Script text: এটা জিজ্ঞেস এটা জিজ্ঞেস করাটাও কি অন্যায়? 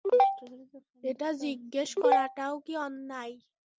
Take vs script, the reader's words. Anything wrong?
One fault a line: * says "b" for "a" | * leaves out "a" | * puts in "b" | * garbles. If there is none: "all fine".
* leaves out "এটা জিজ্ঞেস"